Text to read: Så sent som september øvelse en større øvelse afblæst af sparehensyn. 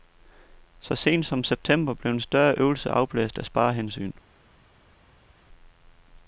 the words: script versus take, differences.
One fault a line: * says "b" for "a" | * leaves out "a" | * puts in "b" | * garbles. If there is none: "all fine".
* says "blev" for "øvelse"